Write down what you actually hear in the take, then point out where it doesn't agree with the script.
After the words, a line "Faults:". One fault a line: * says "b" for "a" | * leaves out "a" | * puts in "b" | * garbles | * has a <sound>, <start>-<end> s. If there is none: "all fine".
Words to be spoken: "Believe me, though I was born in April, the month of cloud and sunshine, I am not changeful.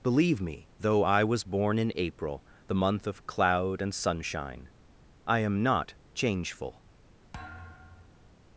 "Believe me, though I was born in April, the month of cloud and sunshine, I am not changeful.
Faults:
* has a thud, 7.3-8.3 s